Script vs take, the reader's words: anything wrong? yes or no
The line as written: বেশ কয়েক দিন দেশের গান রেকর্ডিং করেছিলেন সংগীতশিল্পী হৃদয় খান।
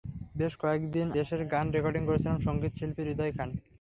no